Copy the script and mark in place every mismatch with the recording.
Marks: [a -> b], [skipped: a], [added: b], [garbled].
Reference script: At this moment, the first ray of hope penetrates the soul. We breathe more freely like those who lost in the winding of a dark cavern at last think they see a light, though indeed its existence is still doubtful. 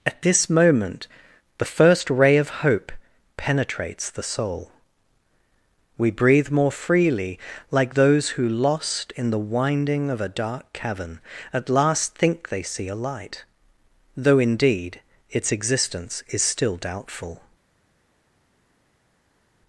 At this moment, the first ray of hope penetrates the soul. We breathe more freely like those who lost in the winding of a dark cavern at last think they see a light, though indeed its existence is still doubtful.